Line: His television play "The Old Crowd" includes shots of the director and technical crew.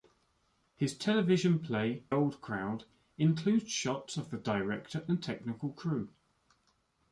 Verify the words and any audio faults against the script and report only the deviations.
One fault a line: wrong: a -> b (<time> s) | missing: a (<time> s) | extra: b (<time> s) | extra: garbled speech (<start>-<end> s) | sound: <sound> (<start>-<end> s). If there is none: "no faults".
missing: The (2.0 s)